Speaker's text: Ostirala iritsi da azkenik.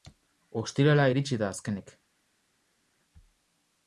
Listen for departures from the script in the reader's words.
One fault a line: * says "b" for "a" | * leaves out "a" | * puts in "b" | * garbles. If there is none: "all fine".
all fine